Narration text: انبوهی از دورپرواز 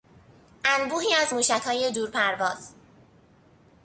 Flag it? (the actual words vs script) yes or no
yes